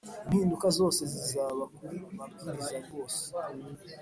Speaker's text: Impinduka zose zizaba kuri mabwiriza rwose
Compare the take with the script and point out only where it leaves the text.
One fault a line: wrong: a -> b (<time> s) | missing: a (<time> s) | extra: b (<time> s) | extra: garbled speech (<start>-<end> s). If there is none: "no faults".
no faults